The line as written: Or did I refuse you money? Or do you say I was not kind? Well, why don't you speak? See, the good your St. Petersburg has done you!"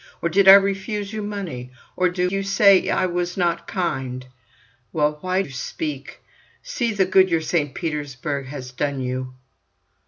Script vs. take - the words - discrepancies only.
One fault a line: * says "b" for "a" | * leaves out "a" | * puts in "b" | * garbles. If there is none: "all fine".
* leaves out "don't"